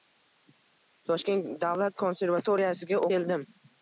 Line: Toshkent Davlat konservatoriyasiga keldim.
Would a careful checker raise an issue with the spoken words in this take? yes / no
no